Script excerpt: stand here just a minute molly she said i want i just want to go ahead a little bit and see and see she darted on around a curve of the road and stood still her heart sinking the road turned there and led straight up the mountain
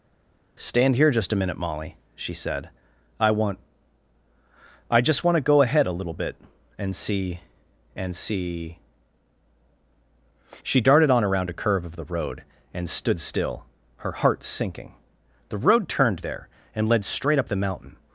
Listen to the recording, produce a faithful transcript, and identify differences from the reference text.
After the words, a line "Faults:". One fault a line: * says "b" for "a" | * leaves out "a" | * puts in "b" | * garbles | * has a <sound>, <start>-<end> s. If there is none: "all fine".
stand here just a minute molly she said i want i just want to go ahead a little bit and see and see she darted on around a curve of the road and stood still her heart sinking the road turned there and led straight up the mountain
Faults:
all fine